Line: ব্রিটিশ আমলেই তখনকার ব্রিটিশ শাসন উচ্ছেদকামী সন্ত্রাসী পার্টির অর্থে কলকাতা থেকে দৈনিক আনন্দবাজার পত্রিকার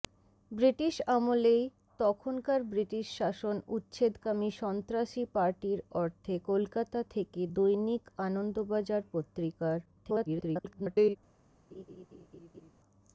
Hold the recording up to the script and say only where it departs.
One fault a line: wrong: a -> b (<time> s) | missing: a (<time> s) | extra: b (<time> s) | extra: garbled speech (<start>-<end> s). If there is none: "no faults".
extra: garbled speech (9.9-11.2 s)